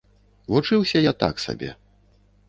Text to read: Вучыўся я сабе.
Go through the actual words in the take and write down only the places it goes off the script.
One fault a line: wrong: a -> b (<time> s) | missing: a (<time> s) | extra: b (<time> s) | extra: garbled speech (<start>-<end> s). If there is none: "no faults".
extra: так (1.2 s)